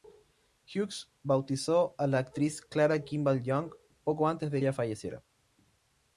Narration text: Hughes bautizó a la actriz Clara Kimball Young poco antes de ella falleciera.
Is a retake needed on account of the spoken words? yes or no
no